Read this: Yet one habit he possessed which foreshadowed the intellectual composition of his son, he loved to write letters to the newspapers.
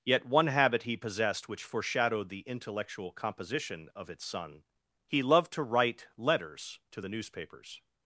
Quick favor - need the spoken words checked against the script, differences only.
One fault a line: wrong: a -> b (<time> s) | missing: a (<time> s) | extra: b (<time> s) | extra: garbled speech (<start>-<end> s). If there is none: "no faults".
wrong: his -> its (4.1 s)